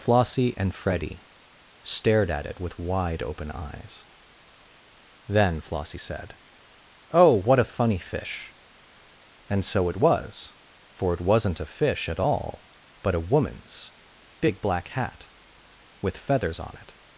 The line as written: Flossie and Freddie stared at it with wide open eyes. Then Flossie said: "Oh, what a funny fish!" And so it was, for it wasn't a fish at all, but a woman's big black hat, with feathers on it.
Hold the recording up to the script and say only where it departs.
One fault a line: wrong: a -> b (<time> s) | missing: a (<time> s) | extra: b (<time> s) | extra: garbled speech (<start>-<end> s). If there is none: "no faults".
no faults